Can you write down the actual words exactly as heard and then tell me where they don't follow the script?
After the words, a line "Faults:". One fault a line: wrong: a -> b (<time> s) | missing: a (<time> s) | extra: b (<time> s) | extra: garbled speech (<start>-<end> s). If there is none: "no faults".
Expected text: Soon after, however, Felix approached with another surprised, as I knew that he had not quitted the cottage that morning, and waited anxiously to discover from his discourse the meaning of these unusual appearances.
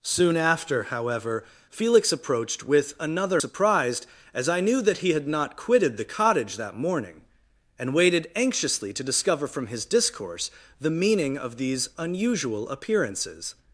Soon after, however, Felix approached with another surprised, as I knew that he had not quitted the cottage that morning, and waited anxiously to discover from his discourse the meaning of these unusual appearances.
Faults:
no faults